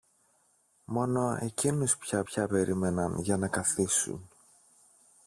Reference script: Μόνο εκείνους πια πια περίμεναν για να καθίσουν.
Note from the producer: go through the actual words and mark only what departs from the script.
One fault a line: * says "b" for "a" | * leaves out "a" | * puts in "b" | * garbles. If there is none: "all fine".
all fine